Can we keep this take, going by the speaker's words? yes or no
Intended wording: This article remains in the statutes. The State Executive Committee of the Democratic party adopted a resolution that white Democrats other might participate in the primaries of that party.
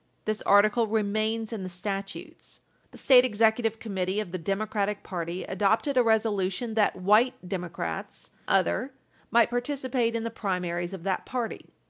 yes